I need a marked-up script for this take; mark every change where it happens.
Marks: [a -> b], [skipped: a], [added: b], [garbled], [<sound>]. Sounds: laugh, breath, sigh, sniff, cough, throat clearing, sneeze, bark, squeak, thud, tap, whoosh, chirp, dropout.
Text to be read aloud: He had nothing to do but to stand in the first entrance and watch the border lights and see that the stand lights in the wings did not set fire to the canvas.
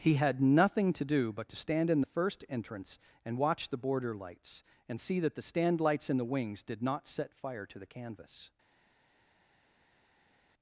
He had nothing to do but to stand in the first entrance and watch the border lights and see that the stand lights in the wings did not set fire to the canvas.